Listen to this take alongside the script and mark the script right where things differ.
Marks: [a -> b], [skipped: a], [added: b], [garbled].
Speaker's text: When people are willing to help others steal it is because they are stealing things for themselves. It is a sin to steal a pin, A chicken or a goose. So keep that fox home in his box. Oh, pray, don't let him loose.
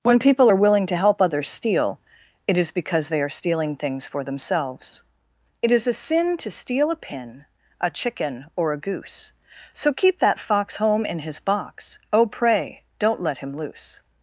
When people are willing to help others steal it is because they are stealing things for themselves. It is a sin to steal a pin, A chicken or a goose. So keep that fox home in his box. Oh, pray, don't let him loose.